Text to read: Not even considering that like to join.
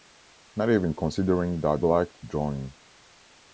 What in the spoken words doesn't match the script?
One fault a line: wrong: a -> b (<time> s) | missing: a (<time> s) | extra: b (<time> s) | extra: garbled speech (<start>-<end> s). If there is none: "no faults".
no faults